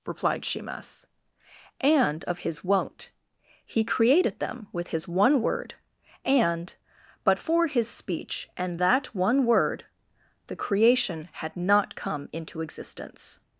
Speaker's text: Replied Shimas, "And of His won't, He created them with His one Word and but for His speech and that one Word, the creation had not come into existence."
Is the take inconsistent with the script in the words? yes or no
no